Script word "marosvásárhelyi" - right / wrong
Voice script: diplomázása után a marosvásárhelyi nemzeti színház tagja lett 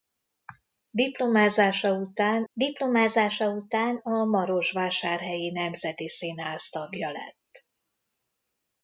right